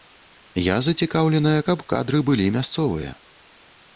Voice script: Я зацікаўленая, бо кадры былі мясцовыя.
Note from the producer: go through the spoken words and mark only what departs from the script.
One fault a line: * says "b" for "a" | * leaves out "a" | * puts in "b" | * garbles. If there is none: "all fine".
* says "каб" for "бо"